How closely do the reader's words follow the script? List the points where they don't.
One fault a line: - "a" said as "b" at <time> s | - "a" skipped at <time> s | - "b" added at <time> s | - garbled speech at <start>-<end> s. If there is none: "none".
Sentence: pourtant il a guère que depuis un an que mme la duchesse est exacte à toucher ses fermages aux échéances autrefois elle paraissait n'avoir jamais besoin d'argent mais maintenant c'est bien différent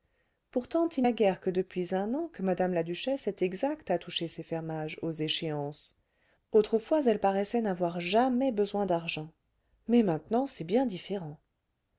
none